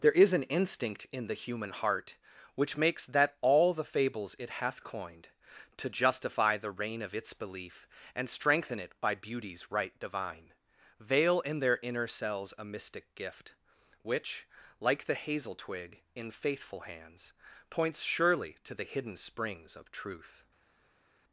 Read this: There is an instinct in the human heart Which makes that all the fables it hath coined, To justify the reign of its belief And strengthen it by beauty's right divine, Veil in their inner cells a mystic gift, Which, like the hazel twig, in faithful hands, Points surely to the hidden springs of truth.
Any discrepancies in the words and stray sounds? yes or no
no